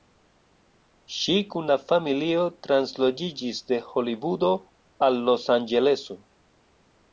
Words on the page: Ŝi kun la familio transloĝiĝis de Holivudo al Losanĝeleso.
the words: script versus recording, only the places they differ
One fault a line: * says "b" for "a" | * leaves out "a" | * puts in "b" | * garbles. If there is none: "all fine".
all fine